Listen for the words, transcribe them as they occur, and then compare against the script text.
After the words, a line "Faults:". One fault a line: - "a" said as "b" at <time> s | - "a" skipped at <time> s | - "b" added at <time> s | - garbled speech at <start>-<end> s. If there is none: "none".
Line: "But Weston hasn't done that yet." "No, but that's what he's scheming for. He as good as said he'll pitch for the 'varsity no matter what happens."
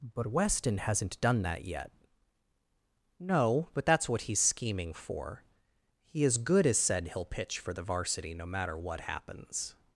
"But Weston hasn't done that yet." "No, but that's what he's scheming for. He as good as said he'll pitch for the 'varsity no matter what happens."
Faults:
none